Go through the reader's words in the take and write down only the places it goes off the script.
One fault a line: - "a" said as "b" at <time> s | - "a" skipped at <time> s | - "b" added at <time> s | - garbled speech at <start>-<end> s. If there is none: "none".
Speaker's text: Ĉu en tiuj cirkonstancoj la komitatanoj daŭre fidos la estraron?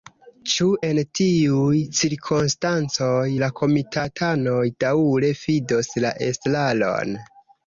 none